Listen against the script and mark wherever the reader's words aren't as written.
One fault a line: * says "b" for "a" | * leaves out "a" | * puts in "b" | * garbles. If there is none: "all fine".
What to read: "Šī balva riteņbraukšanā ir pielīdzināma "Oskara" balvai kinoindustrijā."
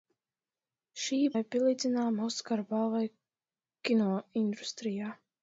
* leaves out "balva riteņbraukšanā"